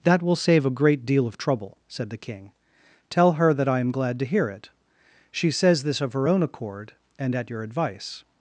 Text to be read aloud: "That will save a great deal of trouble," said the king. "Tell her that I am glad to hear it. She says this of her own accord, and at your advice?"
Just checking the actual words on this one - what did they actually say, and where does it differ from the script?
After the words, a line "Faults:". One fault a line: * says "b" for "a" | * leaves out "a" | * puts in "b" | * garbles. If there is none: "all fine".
"That will save a great deal of trouble," said the king. "Tell her that I am glad to hear it. She says this of her own accord, and at your advice?"
Faults:
all fine